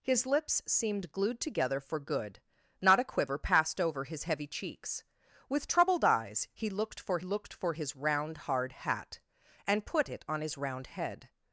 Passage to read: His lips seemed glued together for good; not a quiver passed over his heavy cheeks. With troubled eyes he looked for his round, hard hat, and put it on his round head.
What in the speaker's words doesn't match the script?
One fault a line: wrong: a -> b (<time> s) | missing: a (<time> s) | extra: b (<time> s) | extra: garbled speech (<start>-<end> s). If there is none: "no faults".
extra: looked for (7.2 s)